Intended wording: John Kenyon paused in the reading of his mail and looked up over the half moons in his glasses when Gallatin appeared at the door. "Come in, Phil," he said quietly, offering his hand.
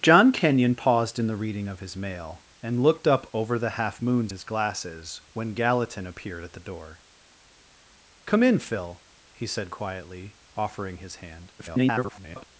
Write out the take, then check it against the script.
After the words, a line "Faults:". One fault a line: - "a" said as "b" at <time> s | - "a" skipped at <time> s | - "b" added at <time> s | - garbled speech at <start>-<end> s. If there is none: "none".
John Kenyon paused in the reading of his mail and looked up over the half moons his glasses when Gallatin appeared at the door. "Come in, Phil," he said quietly, offering his hand. [garbled]
Faults:
- "in" skipped at 4.3 s
- garbled speech at 11.6-12.5 s